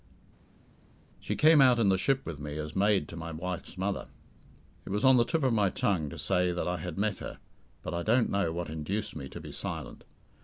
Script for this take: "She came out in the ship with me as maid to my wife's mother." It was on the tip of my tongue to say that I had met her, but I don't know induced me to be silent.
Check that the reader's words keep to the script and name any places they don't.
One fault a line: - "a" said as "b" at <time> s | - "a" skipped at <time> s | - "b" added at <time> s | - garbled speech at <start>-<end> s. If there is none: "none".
- "what" added at 8.5 s